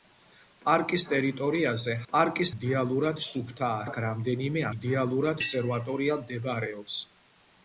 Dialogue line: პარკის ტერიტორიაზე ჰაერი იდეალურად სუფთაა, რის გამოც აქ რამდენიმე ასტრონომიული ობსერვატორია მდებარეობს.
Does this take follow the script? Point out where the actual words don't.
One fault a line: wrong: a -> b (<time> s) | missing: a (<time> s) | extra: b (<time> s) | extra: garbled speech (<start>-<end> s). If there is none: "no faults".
wrong: ჰაერი -> პარკის (2.1 s)
missing: რის გამოც (3.8 s)
wrong: ასტრონომიული -> იდეალურად (4.7 s)